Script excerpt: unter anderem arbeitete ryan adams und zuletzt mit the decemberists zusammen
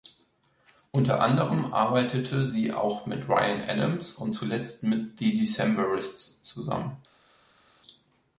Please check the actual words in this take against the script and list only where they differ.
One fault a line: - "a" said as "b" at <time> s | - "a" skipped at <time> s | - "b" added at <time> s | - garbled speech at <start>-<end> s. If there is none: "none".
- "sie auch mit" added at 2.5 s